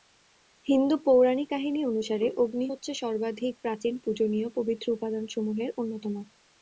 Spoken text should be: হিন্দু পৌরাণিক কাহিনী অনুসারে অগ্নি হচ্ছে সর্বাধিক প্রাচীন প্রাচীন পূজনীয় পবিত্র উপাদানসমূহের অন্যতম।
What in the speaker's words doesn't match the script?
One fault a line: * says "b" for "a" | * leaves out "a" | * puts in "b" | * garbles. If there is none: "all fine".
* leaves out "প্রাচীন"